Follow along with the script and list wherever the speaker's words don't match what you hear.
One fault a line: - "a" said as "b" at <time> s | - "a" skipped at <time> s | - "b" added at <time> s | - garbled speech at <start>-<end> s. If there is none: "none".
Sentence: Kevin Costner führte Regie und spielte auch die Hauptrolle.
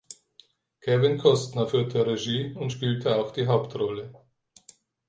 none